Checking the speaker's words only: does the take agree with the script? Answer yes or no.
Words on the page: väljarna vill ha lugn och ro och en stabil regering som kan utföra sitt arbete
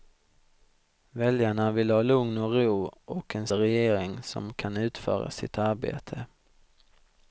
no